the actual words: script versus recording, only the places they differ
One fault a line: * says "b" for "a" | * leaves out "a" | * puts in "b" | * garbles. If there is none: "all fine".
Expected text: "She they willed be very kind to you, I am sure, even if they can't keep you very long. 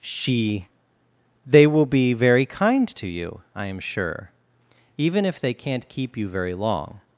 * says "will" for "willed"